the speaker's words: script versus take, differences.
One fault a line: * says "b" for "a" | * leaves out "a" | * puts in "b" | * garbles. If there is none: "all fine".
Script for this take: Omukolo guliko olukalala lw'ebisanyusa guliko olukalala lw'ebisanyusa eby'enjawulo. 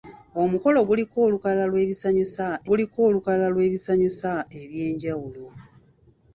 all fine